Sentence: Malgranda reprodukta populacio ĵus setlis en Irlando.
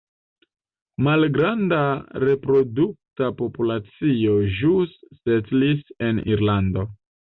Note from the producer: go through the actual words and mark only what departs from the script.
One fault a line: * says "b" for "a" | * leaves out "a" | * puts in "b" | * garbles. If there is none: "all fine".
all fine